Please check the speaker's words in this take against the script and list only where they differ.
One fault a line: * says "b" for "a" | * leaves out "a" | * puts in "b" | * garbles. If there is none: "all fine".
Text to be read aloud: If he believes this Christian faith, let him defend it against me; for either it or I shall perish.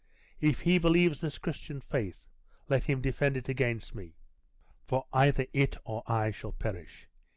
all fine